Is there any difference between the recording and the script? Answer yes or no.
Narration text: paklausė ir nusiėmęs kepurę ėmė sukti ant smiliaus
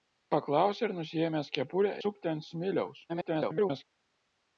yes